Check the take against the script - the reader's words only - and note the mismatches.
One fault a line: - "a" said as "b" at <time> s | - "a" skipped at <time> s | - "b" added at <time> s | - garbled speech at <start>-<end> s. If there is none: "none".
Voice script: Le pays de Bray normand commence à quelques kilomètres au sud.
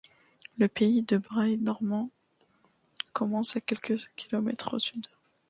none